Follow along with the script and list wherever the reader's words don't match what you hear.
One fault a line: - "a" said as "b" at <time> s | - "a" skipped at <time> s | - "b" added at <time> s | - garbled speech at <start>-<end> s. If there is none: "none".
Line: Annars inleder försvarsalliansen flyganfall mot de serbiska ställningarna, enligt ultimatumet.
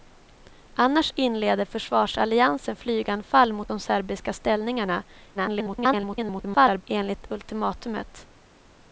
- garbled speech at 5.3-6.8 s